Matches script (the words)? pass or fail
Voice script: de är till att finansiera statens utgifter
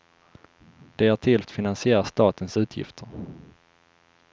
pass